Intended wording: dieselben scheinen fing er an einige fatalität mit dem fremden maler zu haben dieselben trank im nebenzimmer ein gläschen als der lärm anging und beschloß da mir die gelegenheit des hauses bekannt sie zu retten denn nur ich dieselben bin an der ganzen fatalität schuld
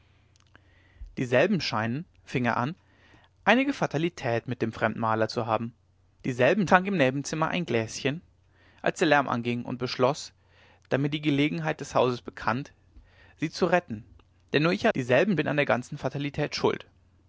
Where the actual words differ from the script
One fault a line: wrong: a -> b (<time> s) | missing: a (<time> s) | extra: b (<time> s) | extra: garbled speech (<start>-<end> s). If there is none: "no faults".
no faults